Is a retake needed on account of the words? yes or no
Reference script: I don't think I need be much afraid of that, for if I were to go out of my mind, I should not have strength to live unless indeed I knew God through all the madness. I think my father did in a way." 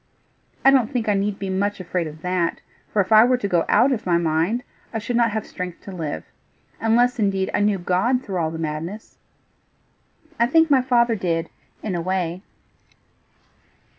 no